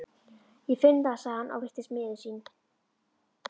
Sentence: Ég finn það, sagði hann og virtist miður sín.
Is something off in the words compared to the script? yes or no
no